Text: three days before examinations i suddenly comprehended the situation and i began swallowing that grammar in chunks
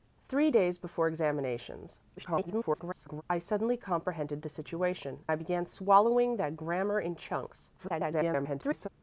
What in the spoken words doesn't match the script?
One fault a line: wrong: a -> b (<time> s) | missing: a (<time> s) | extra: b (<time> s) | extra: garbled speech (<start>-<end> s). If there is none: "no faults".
extra: garbled speech (2.2-3.2 s)
missing: and (5.3 s)
extra: garbled speech (7.8-8.9 s)